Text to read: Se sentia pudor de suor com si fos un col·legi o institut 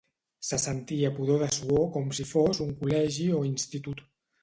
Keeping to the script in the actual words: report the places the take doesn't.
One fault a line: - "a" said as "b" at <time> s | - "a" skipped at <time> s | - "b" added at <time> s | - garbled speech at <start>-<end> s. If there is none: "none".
none